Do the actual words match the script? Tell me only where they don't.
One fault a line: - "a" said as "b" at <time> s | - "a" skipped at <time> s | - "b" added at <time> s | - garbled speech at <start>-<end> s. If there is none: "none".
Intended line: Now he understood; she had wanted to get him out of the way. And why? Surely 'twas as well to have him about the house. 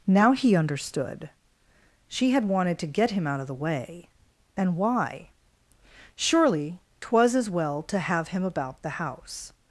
none